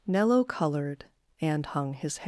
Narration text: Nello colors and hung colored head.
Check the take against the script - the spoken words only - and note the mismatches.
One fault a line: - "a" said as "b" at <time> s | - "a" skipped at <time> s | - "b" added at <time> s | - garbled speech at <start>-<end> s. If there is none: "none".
- "colors" said as "colored" at 0.4 s
- "colored" said as "his" at 1.9 s